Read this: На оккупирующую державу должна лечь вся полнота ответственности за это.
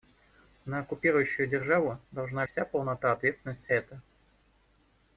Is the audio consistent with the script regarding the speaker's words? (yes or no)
no